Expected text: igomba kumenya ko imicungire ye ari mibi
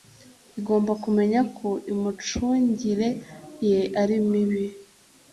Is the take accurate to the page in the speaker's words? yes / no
yes